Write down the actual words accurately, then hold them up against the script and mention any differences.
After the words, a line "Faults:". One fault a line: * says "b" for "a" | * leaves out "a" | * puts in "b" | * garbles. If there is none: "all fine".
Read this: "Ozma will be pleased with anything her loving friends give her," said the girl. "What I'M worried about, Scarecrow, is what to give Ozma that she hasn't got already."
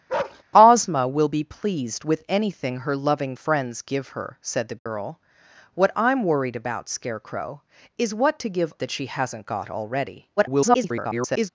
"Ozma will be pleased with anything her loving friends give her," said the girl. "What I'M worried about, Scarecrow, is what to give That she hasn't got already." [garbled]
Faults:
* leaves out "Ozma"
* garbles